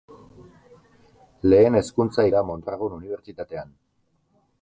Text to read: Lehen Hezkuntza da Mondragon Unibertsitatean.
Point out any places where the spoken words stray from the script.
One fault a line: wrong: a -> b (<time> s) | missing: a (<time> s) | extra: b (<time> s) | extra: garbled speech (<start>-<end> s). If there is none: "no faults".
no faults